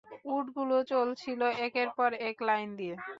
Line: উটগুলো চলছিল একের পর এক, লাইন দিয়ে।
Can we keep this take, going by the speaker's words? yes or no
yes